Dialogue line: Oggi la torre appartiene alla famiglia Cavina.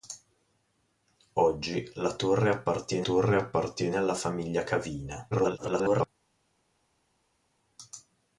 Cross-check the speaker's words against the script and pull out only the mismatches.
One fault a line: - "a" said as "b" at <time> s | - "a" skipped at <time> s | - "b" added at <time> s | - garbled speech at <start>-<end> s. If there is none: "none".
- "torre appartiene" added at 3.0 s
- garbled speech at 5.3-6.1 s